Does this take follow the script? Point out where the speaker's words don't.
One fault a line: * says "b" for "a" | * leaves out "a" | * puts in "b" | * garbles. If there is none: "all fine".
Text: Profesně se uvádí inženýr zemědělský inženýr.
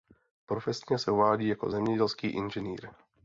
* says "jako" for "inženýr"